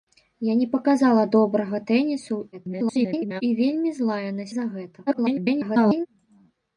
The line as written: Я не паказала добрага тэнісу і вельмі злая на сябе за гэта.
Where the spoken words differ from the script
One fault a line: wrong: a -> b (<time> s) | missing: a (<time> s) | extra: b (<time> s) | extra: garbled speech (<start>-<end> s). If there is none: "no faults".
extra: garbled speech (2.5-3.4 s)
missing: сябе (4.4 s)
extra: garbled speech (5.1-6.1 s)